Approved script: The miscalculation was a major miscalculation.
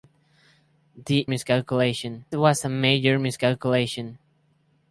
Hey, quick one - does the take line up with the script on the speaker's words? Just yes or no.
yes